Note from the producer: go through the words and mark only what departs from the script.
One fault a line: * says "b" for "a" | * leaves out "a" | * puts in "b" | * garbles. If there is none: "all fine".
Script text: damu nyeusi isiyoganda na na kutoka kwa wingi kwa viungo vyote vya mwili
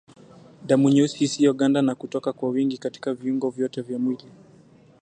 * leaves out "na"
* says "katika" for "kwa"